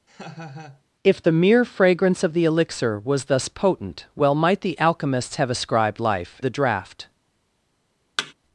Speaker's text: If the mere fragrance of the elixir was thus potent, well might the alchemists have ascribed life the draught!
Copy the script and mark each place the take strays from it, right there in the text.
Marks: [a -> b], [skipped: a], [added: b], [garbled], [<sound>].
[laugh] If the mere fragrance of the elixir was thus potent, well might the alchemists have ascribed life the draught! [thud]